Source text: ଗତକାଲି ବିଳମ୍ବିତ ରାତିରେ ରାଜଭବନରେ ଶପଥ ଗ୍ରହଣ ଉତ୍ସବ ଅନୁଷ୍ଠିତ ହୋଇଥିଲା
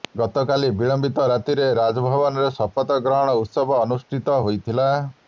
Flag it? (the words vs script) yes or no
no